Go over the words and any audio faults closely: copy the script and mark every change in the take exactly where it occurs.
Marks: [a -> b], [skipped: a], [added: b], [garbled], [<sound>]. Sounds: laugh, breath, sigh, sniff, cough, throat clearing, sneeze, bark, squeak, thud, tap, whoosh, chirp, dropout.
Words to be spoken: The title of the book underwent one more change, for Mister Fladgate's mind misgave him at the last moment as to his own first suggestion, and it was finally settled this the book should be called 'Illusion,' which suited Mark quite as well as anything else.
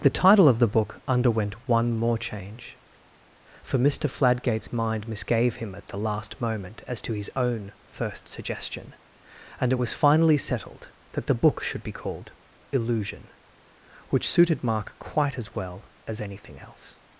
The title of the book underwent one more change, for Mister Fladgate's mind misgave him at the last moment as to his own first suggestion, and it was finally settled [this -> that] the book should be called 'Illusion,' which suited Mark quite as well as anything else.